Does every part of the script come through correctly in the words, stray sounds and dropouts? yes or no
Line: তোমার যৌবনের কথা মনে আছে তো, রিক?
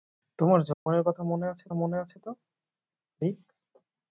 no